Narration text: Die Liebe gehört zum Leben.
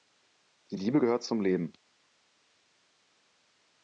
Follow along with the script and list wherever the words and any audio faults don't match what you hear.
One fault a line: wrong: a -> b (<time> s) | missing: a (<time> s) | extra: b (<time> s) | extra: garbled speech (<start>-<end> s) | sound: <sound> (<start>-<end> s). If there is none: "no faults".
no faults